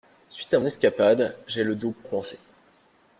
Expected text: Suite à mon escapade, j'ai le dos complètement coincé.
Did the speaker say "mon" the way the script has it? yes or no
no